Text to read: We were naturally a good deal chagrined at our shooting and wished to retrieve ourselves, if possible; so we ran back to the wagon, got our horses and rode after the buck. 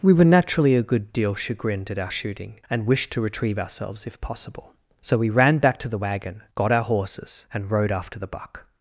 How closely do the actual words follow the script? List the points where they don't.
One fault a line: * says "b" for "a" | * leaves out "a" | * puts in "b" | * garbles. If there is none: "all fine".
all fine